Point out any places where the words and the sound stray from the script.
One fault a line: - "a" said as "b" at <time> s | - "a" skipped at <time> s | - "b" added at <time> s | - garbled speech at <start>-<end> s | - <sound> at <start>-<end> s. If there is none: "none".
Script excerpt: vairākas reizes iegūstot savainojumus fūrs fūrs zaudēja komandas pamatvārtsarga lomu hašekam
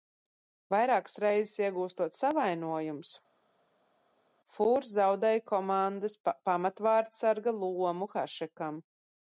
- "fūrs" skipped at 4.9 s